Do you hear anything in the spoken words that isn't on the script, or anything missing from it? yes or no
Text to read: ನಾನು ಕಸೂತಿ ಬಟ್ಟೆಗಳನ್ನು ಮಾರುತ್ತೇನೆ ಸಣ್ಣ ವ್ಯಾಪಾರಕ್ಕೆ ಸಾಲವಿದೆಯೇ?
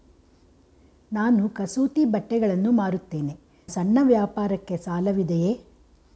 no